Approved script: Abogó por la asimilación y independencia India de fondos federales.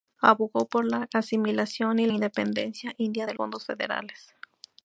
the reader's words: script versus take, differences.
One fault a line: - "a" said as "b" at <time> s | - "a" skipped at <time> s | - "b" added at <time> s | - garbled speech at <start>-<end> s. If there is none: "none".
none